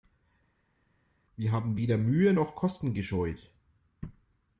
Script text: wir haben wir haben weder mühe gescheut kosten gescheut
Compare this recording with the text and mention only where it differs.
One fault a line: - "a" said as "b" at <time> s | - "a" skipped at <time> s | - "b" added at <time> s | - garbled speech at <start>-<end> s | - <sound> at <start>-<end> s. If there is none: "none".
- "wir haben" skipped at 1.8 s
- "gescheut" said as "noch" at 2.3 s